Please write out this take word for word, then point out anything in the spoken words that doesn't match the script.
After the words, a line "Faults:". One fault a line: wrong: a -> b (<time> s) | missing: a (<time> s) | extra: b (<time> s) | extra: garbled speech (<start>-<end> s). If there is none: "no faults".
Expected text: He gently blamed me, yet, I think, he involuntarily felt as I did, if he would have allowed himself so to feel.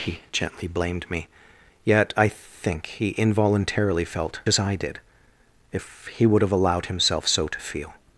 He gently blamed me, yet, I think, he involuntarily felt as I did, if he would have allowed himself so to feel.
Faults:
no faults